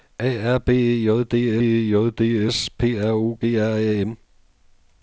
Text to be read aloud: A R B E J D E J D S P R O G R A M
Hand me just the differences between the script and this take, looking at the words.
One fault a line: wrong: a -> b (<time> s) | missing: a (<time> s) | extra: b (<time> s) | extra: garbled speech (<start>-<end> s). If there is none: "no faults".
no faults